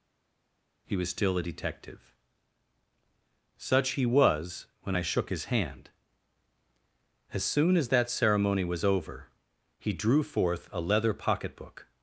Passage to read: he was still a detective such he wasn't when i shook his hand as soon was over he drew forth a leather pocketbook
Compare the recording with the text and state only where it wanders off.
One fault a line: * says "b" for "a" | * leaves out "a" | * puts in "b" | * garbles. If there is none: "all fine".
* says "was" for "wasn't"
* puts in "as that ceremony"